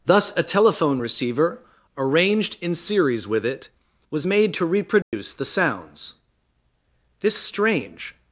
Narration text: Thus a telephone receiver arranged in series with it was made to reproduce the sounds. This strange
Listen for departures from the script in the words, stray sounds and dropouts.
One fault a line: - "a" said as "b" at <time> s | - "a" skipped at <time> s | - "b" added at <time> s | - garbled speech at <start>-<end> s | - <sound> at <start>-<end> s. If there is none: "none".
- dropout at 5.0-5.1 s